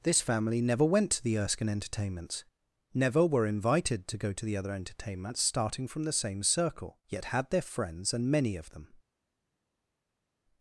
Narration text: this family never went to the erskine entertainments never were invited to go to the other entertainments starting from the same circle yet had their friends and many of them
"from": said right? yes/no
yes